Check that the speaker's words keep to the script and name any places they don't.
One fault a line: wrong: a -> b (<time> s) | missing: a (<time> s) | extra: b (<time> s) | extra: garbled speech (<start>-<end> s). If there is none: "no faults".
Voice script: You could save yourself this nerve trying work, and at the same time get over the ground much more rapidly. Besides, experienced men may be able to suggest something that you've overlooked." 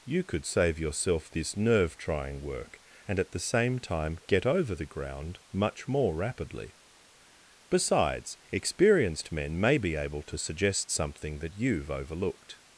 no faults